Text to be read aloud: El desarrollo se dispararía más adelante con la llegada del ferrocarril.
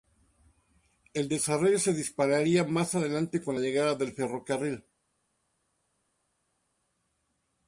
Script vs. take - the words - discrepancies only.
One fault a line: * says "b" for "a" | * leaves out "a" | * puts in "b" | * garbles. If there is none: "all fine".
all fine